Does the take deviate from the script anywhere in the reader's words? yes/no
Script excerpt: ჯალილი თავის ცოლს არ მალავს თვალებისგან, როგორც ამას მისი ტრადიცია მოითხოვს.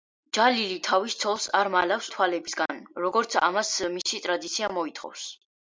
no